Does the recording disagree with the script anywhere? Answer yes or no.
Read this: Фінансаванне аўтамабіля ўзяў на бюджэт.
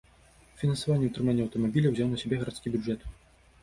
yes